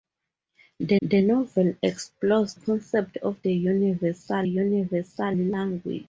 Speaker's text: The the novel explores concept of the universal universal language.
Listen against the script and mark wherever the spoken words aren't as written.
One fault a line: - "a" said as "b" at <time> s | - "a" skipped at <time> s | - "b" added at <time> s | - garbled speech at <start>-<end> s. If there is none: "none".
none